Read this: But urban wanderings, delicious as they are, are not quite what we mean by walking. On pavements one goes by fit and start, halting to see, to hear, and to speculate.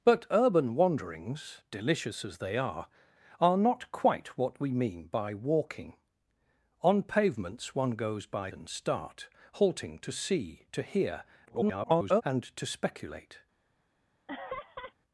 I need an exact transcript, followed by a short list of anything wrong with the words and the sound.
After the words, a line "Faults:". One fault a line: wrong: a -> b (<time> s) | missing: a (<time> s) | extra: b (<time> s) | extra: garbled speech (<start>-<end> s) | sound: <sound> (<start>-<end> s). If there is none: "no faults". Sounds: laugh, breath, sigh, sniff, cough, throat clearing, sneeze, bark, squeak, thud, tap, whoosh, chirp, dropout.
But urban wanderings, delicious as they are, are not quite what we mean by walking. On pavements one goes by and start, halting to see, to hear, [garbled] and to speculate.
Faults:
missing: fit (8.5 s)
extra: garbled speech (11.5-12.2 s)
sound: laugh (14.3-14.9 s)